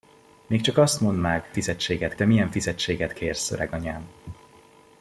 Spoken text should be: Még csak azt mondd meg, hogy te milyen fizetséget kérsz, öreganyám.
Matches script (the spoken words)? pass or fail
fail